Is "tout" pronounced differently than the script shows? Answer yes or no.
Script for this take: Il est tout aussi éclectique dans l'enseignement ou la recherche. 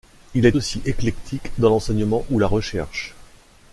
yes